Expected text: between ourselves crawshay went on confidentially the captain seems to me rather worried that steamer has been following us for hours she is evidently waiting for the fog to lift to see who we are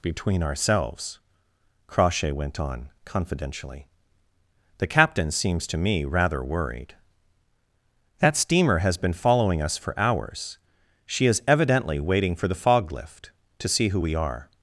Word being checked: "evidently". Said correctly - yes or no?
yes